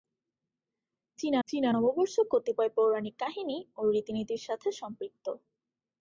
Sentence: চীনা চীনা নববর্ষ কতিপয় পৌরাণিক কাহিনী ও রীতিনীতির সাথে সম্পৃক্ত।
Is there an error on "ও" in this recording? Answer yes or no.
no